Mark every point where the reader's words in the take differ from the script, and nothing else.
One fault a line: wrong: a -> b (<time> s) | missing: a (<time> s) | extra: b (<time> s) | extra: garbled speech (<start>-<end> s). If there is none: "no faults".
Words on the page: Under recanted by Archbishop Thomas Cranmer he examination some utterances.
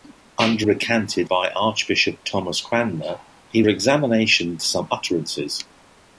no faults